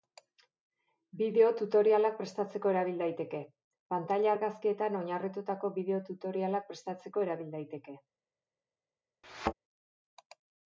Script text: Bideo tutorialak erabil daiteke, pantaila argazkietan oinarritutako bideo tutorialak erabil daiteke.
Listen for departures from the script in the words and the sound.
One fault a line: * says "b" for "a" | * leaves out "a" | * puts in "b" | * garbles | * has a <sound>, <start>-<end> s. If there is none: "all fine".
* puts in "prestatzeko"
* puts in "prestatzeko"
* has a thud, 9.2-9.5 s